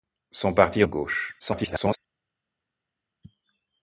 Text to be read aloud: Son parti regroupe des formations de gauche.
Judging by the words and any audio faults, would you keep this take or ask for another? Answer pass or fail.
fail